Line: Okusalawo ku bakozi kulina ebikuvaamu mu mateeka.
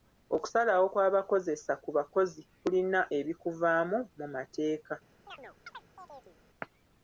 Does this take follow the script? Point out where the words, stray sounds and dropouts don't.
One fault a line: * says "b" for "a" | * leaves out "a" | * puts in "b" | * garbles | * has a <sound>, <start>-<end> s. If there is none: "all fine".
* puts in "kw'abakozesa"
* has a chirp, 5.3-6.4 s